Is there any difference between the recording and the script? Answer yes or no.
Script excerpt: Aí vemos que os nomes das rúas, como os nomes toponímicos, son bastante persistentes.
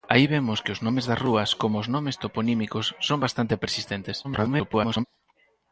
yes